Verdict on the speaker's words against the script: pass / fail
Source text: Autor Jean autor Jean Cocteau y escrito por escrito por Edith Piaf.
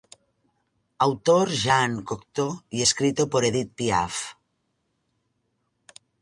fail